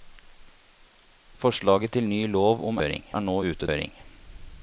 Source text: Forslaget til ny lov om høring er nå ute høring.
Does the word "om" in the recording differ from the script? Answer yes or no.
no